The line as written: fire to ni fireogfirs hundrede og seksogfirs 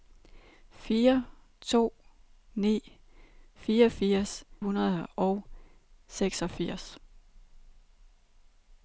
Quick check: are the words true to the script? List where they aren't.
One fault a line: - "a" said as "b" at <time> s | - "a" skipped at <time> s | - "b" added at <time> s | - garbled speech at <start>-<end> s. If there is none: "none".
none